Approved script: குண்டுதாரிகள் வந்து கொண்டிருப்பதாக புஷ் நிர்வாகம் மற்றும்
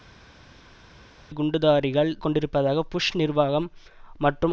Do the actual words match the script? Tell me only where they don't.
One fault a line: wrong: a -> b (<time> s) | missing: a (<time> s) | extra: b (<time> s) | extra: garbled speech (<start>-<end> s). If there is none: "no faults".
missing: வந்து (2.1 s)